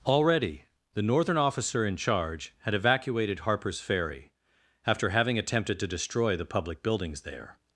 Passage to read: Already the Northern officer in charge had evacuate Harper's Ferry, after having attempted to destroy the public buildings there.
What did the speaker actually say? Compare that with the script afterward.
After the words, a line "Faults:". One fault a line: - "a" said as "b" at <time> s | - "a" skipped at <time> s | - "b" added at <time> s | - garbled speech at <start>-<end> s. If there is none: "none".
Already the Northern officer in charge had evacuated Harper's Ferry, after having attempted to destroy the public buildings there.
Faults:
- "evacuate" said as "evacuated" at 2.7 s